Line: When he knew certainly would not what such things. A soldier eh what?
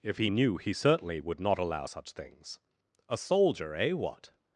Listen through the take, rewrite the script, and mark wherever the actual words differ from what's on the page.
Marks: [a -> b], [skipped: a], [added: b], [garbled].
[When -> If] he knew [added: he] certainly would not [what -> allow] such things. A soldier eh what?